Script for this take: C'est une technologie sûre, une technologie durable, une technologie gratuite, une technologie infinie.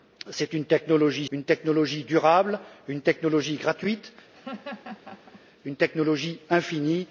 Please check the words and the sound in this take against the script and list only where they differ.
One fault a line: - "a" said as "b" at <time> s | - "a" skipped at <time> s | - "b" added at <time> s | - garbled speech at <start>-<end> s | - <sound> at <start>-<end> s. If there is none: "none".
- "sûre" skipped at 1.3 s
- laugh at 4.3-5.4 s